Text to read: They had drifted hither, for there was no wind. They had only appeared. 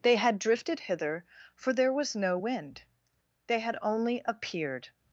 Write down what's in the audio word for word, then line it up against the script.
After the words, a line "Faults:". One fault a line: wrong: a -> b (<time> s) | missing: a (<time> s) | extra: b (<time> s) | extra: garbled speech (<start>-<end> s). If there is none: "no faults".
They had drifted hither, for there was no wind. They had only appeared.
Faults:
no faults